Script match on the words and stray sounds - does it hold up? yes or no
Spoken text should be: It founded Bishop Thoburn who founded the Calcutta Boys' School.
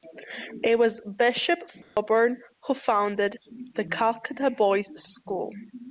no